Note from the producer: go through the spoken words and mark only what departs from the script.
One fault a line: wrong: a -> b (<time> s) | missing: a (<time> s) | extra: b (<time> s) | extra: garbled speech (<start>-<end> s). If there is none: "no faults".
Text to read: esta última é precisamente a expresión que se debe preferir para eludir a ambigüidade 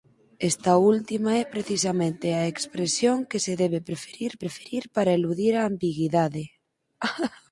extra: preferir (4.4 s)